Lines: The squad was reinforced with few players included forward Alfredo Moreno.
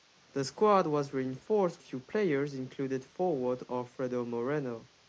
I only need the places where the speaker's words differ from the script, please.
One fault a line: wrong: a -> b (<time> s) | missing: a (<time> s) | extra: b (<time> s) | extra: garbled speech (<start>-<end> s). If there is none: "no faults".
missing: with (1.8 s)